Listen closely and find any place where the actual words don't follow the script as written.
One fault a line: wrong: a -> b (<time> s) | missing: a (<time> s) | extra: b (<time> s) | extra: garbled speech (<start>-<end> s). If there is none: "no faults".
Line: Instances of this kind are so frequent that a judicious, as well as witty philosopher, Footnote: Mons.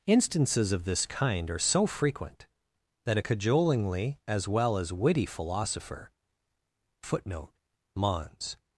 wrong: judicious -> cajolingly (3.2 s)